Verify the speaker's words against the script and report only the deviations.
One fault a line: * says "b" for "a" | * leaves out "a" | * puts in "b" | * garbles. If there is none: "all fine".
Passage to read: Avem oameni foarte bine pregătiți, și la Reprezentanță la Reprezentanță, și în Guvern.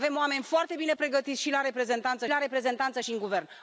all fine